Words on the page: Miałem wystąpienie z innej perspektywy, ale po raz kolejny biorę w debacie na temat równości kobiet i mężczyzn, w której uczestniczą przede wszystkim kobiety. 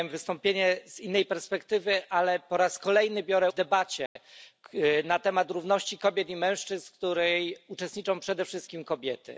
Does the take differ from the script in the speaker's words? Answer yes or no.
no